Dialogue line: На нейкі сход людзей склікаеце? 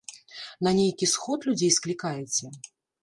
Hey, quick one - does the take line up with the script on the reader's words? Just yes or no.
yes